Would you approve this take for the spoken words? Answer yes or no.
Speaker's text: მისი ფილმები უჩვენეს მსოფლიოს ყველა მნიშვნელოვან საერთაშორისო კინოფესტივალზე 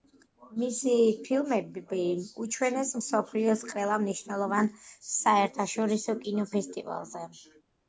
yes